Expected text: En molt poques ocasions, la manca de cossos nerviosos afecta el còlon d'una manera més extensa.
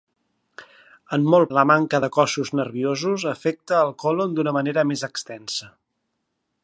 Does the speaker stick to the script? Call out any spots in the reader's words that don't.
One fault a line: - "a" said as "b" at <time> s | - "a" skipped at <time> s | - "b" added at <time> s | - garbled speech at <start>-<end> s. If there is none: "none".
- "poques ocasions" skipped at 1.5 s